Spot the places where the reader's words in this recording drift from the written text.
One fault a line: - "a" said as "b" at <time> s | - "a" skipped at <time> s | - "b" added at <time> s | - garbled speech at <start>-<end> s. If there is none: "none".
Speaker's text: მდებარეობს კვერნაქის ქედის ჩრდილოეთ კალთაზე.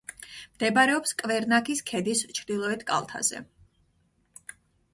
none